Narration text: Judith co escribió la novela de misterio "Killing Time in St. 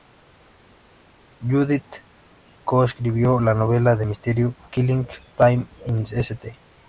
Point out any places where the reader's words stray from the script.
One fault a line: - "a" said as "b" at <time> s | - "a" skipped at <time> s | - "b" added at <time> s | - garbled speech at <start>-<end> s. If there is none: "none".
none